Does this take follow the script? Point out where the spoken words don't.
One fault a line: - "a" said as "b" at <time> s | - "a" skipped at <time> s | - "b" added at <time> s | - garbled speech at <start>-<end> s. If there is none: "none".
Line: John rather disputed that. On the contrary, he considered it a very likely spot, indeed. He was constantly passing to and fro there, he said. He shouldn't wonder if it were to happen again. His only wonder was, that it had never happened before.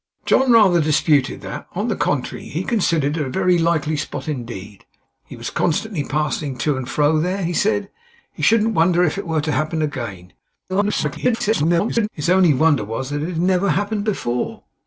- garbled speech at 10.7-12.1 s